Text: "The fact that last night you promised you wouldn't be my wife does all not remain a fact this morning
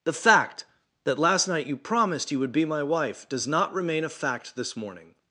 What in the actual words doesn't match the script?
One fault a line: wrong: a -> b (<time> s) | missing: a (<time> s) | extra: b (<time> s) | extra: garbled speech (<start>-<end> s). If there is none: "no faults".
wrong: wouldn't -> would (2.4 s)
missing: all (3.5 s)